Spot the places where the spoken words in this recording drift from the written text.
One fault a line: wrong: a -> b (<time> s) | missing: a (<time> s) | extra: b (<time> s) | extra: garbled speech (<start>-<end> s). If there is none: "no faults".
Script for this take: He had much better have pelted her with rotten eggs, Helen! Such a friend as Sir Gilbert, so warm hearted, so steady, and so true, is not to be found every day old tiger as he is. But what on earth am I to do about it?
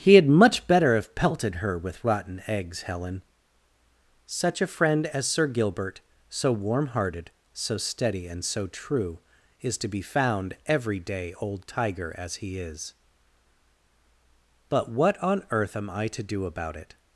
missing: not (9.8 s)